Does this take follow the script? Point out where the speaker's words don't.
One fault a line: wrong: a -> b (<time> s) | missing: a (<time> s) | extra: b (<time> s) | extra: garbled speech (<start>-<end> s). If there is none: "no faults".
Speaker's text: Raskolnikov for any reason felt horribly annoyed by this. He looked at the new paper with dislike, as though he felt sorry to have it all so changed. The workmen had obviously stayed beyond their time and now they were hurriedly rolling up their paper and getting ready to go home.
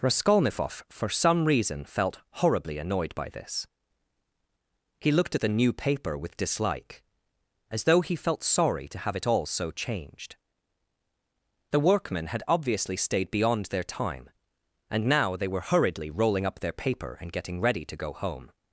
wrong: any -> some (1.1 s)